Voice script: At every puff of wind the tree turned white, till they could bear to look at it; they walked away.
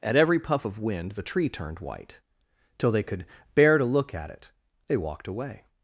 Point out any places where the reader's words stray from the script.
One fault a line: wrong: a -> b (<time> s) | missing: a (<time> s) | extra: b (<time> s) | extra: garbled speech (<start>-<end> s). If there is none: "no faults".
no faults